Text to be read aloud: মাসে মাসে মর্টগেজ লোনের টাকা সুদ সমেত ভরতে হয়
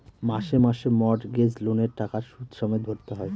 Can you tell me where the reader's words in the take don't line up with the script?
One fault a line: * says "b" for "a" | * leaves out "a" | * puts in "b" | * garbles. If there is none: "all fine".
all fine